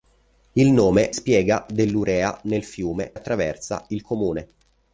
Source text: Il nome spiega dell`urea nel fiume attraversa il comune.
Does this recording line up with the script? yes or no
yes